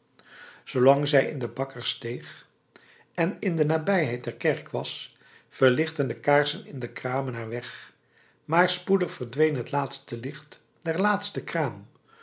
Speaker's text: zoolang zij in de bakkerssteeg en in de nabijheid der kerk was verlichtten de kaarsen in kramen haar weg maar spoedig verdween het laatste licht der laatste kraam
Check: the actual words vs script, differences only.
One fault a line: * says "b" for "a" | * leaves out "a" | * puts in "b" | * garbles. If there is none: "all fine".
* puts in "de"